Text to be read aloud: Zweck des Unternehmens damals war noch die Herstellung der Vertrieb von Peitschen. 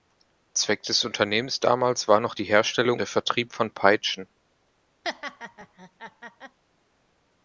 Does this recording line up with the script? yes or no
yes